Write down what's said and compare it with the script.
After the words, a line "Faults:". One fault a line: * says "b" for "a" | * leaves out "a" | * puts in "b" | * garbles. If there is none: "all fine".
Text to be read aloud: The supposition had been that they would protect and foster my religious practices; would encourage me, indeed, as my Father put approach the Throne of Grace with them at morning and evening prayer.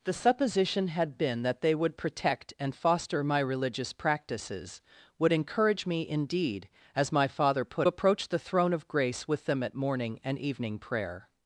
The supposition had been that they would protect and foster my religious practices; would encourage me, indeed, as my Father put approach the Throne of Grace with them at morning and evening prayer.
Faults:
all fine